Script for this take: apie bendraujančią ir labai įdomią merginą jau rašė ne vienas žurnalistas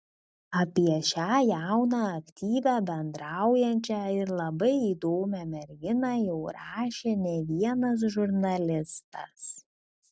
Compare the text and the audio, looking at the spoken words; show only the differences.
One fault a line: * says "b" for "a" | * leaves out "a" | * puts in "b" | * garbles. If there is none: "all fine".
* puts in "šią jauną aktyvią"